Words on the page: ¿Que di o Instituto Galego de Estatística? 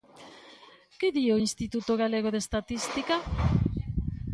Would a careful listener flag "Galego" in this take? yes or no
no